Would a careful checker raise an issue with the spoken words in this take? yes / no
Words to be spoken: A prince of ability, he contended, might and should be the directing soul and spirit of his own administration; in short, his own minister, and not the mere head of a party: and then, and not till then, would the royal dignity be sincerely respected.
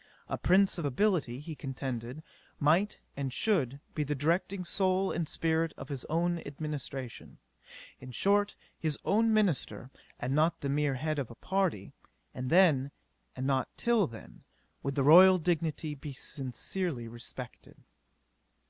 no